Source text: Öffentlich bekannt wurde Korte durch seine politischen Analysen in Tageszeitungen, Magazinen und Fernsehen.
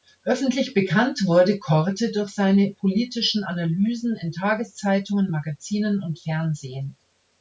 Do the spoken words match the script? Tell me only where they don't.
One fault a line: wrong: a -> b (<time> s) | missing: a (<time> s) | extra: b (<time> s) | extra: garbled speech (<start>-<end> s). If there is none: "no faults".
no faults